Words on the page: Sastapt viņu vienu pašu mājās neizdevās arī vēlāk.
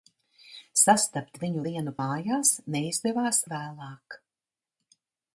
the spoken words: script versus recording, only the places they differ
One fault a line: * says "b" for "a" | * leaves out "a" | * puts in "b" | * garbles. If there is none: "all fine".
* leaves out "pašu"
* leaves out "arī"